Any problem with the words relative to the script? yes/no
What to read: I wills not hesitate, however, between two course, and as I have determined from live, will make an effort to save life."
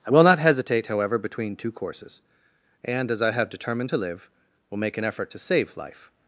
yes